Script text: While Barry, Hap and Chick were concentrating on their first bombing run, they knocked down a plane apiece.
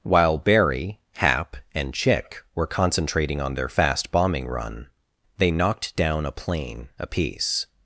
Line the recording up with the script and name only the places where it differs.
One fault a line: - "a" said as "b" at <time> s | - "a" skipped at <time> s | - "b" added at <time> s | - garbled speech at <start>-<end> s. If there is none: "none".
- "first" said as "fast" at 3.7 s